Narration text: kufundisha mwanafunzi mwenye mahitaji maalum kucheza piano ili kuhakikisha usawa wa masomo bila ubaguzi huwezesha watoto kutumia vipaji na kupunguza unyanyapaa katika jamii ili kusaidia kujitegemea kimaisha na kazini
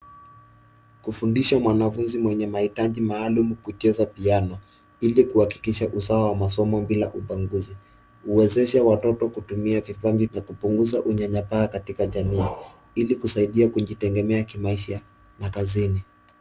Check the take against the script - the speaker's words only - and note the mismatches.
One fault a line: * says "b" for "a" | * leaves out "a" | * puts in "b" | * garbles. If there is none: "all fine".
all fine